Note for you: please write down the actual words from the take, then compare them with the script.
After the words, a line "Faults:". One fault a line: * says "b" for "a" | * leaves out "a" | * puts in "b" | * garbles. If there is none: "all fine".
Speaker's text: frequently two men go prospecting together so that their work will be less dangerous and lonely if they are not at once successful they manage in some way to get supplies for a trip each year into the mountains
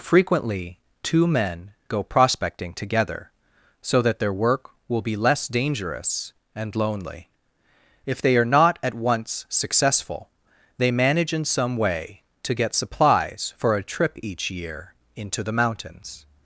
frequently two men go prospecting together so that their work will be less dangerous and lonely if they are not at once successful they manage in some way to get supplies for a trip each year into the mountains
Faults:
all fine